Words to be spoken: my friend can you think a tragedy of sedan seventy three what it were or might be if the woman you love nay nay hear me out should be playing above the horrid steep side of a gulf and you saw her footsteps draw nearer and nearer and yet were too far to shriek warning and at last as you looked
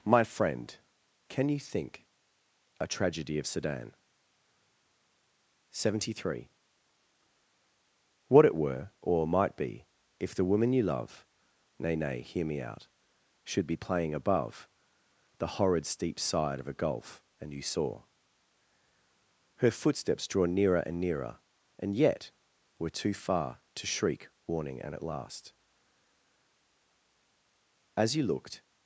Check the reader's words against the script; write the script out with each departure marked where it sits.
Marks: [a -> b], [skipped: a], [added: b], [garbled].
my friend can you think a tragedy of sedan seventy three what it were or might be if the woman you love nay nay hear me out should be playing above the horrid steep side of a gulf and you saw her footsteps draw nearer and nearer and yet were too far to shriek warning and at last as you looked